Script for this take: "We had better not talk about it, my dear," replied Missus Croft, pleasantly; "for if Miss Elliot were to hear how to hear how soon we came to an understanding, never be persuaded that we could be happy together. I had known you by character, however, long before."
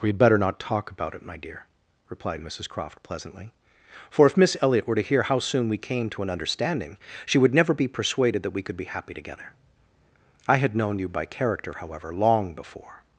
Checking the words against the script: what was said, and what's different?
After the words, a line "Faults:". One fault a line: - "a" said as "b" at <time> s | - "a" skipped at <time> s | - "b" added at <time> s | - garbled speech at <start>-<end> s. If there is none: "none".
"We had better not talk about it, my dear," replied Missus Croft, pleasantly; "for if Miss Elliot were to hear how soon we came to an understanding, she would never be persuaded that we could be happy together. I had known you by character, however, long before."
Faults:
- "to hear how" skipped at 5.4 s
- "she would" added at 7.2 s